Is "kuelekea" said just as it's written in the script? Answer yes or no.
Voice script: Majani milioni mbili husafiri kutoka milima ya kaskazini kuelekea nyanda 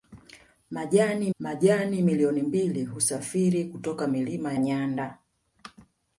no